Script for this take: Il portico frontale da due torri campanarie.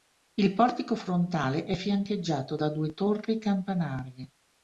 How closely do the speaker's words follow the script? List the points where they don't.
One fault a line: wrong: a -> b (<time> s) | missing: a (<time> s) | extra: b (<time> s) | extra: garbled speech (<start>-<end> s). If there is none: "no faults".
extra: è fiancheggiato (1.6 s)